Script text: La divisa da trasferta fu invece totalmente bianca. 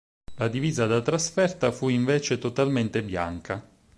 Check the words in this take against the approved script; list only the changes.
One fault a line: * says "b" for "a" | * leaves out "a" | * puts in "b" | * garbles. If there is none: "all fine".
all fine